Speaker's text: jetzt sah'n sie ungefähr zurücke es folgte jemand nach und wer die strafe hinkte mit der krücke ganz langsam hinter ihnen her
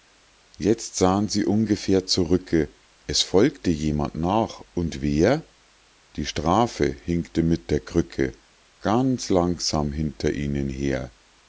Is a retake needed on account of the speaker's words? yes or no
no